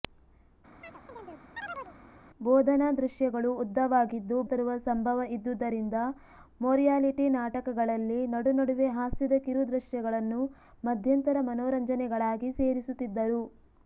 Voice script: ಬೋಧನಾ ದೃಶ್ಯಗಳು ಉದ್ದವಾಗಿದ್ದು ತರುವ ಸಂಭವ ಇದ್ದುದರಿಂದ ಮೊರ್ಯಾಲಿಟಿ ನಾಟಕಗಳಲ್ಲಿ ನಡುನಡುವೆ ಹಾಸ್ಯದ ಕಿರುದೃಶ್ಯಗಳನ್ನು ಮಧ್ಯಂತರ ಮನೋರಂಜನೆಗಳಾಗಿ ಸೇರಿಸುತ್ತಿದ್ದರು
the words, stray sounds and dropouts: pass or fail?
fail